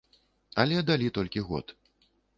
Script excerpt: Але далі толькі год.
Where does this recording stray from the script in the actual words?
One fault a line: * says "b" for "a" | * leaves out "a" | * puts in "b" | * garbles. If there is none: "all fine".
all fine